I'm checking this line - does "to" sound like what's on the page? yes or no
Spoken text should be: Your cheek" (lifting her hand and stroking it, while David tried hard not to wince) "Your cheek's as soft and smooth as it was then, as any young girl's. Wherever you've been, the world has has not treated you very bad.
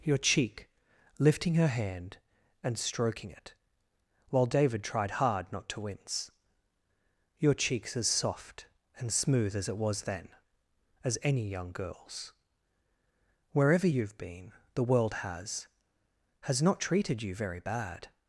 yes